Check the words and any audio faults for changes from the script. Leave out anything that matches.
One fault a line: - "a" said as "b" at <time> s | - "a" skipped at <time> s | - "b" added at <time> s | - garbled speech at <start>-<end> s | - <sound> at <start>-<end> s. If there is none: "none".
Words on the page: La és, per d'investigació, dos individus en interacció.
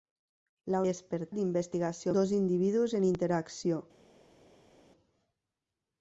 none